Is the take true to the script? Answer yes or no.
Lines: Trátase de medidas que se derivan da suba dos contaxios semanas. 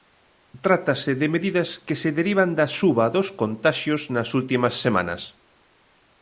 no